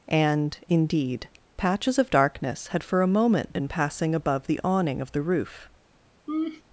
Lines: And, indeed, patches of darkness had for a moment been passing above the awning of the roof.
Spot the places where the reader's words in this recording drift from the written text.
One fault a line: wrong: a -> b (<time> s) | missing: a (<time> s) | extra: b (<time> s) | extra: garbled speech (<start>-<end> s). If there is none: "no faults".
no faults